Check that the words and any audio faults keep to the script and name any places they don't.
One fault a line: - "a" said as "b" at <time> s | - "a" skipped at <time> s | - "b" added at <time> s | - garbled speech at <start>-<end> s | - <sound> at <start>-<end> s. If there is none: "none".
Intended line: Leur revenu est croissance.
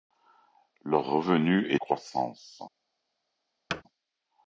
- thud at 3.7-3.8 s